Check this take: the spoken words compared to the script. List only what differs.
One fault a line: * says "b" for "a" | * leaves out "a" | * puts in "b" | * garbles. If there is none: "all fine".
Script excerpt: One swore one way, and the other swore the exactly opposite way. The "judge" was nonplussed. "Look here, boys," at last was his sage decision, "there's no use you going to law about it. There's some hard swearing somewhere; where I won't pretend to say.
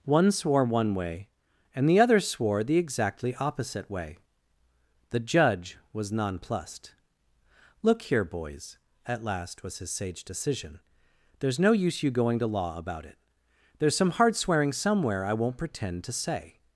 * leaves out "where"